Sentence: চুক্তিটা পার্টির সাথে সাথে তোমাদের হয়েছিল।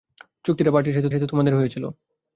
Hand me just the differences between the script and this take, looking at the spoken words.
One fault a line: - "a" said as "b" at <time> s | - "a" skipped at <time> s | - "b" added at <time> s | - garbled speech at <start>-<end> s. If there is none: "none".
none